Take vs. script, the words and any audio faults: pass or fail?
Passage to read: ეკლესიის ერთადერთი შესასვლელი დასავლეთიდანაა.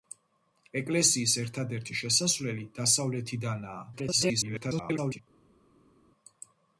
fail